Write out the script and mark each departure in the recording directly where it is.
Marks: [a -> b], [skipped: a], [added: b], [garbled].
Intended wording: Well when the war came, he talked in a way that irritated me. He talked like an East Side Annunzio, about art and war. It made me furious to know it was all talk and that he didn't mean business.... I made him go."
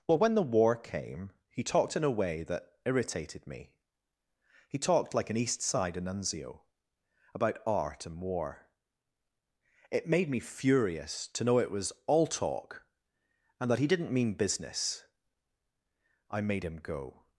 Well when the war came, he talked in a way that irritated me. He talked like an East Side Annunzio, about art and war. It made me furious to know it was all talk and that he didn't mean business.... I made him go."